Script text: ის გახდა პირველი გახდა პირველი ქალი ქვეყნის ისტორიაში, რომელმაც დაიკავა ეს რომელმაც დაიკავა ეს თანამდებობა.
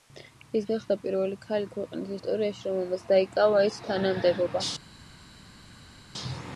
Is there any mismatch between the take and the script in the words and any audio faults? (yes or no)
yes